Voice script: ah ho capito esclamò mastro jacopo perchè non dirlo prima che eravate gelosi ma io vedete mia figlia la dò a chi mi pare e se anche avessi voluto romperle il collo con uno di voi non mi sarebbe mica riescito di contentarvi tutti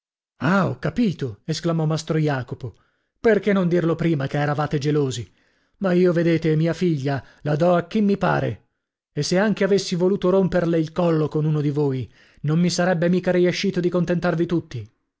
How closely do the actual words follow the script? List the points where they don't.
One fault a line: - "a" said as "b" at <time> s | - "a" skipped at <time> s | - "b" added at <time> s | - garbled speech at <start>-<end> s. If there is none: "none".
none